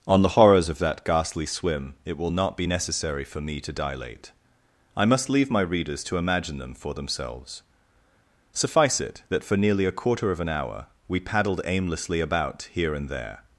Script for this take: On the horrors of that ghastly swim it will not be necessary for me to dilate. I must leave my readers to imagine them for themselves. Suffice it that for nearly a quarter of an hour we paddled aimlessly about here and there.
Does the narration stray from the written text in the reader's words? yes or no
no